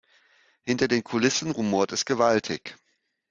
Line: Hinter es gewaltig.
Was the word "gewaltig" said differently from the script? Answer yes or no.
no